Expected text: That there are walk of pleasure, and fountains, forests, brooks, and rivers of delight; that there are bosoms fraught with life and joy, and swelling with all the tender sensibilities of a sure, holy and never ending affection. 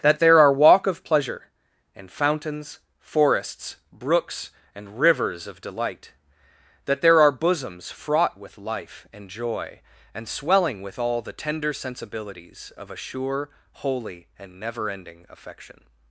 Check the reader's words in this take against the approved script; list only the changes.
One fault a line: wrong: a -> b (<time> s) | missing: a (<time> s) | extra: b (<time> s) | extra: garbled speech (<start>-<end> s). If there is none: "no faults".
no faults